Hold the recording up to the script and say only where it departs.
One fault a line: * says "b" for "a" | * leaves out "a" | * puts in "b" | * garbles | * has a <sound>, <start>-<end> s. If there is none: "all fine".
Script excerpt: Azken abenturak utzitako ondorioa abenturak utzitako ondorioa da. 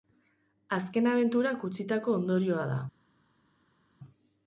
* leaves out "abenturak utzitako ondorioa"